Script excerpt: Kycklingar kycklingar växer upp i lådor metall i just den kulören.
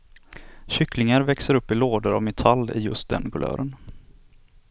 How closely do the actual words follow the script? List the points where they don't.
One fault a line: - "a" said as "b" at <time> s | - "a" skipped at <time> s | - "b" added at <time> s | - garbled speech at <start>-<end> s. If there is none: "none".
- "kycklingar" skipped at 1.2 s
- "av" added at 2.1 s